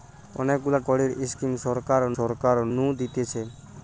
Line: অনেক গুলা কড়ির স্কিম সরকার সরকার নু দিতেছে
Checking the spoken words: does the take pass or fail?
pass